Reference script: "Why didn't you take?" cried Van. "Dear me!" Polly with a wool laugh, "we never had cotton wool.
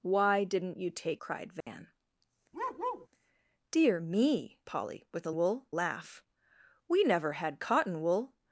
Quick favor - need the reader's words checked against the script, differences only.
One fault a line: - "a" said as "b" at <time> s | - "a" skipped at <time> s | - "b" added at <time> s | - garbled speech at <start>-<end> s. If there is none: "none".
none